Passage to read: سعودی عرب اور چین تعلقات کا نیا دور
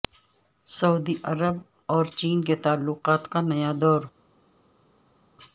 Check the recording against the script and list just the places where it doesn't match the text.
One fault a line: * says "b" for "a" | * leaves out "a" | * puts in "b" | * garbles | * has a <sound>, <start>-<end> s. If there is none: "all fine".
* puts in "کے"